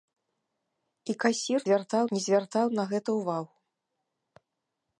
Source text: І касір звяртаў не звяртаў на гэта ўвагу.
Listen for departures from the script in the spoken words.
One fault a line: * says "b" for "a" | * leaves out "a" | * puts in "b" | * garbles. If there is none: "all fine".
all fine